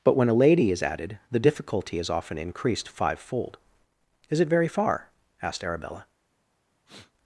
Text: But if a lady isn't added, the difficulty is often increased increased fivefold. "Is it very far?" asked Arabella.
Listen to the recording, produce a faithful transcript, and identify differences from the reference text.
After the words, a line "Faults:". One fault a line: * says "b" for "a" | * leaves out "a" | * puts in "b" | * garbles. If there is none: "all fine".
But when a lady is added, the difficulty is often increased fivefold. "Is it very far?" asked Arabella.
Faults:
* says "when" for "if"
* says "is" for "isn't"
* leaves out "increased"